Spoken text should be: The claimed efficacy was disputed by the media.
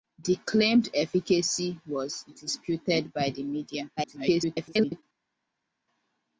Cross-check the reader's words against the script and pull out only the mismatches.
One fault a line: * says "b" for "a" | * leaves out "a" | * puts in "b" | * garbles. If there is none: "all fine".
* garbles